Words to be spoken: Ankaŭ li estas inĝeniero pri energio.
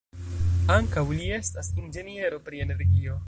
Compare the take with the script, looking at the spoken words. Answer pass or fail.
pass